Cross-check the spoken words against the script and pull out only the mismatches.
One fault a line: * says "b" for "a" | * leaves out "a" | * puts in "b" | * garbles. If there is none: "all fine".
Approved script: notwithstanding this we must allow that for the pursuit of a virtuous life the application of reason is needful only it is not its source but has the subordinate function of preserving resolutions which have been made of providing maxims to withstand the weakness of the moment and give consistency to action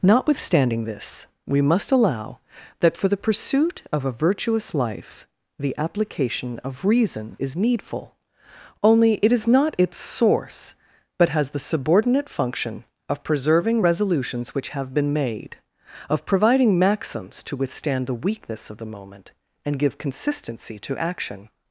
all fine